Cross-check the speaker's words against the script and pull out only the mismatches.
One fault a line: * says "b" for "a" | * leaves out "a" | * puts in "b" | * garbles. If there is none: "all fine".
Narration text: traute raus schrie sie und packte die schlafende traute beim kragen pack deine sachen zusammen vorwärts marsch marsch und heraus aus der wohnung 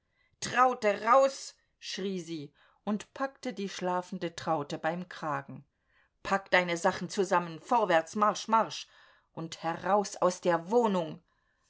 all fine